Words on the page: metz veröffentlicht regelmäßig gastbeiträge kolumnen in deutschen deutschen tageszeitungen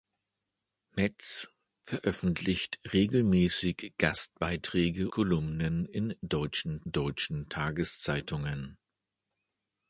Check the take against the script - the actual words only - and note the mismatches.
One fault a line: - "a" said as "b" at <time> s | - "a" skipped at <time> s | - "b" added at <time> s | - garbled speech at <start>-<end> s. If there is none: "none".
none